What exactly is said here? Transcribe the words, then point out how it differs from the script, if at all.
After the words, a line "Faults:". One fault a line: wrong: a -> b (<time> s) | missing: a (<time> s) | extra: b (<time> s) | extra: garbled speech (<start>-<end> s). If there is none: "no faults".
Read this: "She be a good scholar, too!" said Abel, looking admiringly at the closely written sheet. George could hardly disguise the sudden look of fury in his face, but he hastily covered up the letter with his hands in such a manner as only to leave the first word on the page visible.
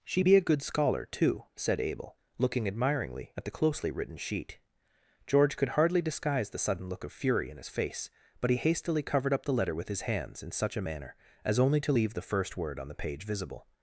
"She be a good scholar, too!" said Abel, looking admiringly at the closely written sheet. George could hardly disguise the sudden look of fury in his face, but he hastily covered up the letter with his hands in such a manner as only to leave the first word on the page visible.
Faults:
no faults